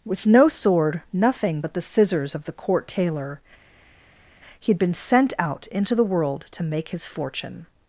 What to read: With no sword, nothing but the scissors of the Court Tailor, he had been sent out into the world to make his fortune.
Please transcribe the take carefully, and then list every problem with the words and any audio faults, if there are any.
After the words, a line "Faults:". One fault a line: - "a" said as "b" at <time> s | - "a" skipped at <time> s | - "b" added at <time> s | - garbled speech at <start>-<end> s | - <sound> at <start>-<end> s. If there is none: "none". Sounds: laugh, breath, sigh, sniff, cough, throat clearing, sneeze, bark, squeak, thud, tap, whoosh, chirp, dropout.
With no sword, nothing but the scissors of the Court Tailor, he had been sent out into the world to make his fortune.
Faults:
none